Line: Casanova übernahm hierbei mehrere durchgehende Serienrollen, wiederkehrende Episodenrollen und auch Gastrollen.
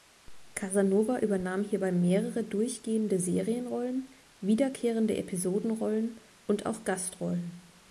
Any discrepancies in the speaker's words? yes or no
no